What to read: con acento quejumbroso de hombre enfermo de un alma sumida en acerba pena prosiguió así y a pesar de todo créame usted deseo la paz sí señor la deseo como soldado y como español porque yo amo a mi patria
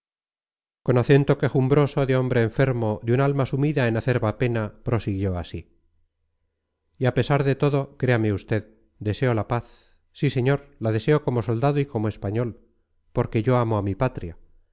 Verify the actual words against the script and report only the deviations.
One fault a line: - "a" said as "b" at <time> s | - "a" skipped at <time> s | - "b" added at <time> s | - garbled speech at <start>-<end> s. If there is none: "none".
none